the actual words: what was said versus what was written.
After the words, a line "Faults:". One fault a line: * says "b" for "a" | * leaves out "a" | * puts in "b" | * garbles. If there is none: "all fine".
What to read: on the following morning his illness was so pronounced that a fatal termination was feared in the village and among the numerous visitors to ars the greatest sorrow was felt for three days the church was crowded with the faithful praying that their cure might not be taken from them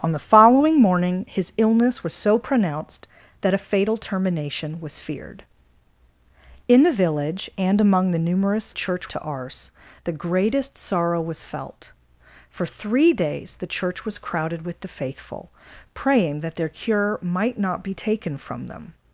on the following morning his illness was so pronounced that a fatal termination was feared in the village and among the numerous church to ars the greatest sorrow was felt for three days the church was crowded with the faithful praying that their cure might not be taken from them
Faults:
* says "church" for "visitors"